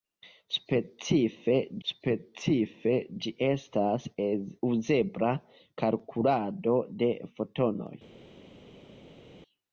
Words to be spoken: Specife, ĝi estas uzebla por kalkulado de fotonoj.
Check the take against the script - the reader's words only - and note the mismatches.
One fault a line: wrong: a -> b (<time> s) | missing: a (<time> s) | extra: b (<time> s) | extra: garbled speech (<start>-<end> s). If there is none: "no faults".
extra: specife (1.9 s)
missing: por (5.3 s)